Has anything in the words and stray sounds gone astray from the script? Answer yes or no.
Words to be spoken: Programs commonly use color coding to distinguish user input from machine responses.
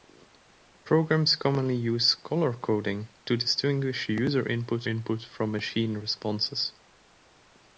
yes